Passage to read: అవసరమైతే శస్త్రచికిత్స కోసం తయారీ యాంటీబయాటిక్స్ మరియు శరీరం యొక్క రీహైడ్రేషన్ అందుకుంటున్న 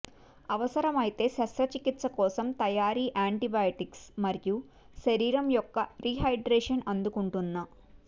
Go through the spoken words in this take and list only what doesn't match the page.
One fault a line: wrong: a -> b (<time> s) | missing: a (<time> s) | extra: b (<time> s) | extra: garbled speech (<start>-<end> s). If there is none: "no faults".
no faults